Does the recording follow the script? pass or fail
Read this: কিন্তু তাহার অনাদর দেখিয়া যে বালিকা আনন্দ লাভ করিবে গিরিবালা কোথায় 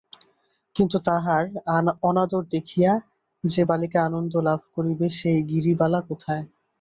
fail